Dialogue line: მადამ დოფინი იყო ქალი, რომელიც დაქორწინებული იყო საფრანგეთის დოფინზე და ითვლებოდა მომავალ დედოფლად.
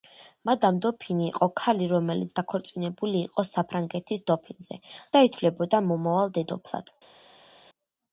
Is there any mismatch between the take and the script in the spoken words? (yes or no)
no